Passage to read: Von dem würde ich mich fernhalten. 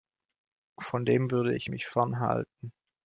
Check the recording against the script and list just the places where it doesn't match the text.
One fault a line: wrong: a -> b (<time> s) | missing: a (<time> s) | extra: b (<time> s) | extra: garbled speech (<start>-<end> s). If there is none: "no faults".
no faults